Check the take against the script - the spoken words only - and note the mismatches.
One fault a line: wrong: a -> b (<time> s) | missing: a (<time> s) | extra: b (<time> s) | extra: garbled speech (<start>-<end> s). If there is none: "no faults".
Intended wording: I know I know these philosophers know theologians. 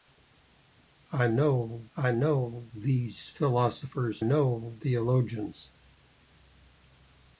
no faults